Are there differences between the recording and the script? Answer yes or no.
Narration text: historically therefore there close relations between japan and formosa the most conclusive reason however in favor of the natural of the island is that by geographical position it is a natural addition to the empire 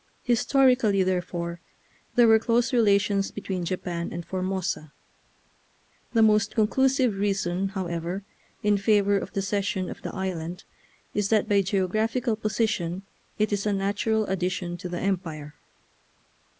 yes